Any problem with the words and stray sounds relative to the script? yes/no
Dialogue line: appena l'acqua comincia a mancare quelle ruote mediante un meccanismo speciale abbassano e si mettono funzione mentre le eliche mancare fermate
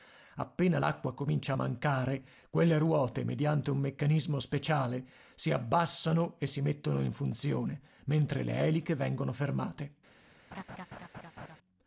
yes